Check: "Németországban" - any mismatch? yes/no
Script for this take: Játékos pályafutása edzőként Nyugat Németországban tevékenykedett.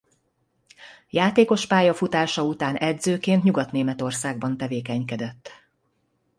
no